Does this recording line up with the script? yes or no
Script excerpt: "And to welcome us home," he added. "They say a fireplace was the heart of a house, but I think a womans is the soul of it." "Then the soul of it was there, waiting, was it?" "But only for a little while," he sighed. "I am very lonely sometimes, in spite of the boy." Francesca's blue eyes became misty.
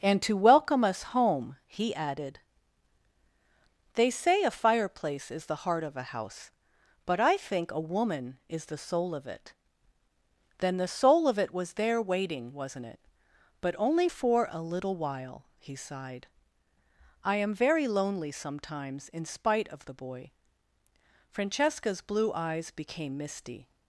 no